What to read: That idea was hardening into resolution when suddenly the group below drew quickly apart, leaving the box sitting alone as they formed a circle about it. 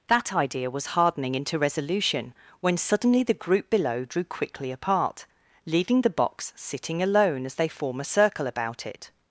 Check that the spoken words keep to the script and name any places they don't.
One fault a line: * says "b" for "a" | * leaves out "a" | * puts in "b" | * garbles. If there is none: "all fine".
* says "form" for "formed"